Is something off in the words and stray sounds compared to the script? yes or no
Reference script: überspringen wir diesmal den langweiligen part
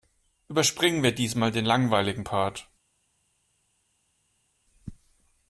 no